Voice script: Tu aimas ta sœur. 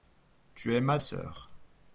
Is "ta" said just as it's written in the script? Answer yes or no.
no